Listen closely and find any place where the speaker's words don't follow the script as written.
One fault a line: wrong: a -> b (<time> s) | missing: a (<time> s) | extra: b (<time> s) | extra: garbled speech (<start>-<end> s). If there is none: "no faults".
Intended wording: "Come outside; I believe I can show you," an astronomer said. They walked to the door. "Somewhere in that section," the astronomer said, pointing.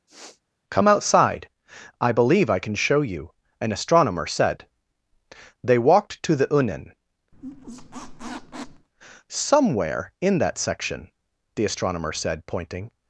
wrong: door -> unen (6.5 s)